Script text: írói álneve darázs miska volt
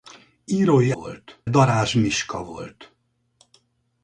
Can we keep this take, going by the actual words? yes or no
no